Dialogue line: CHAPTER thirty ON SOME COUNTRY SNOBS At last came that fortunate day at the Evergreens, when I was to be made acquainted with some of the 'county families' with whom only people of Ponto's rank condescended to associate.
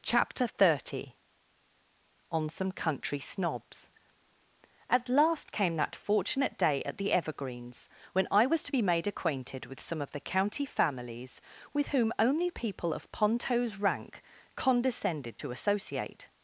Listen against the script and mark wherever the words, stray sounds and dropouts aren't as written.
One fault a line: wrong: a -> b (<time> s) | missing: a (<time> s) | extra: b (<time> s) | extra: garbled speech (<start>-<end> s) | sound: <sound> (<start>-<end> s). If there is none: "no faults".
no faults